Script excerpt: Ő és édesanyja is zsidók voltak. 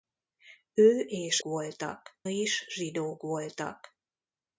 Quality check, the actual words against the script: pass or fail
fail